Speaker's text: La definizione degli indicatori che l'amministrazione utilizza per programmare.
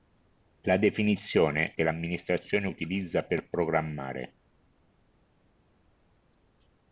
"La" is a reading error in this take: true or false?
false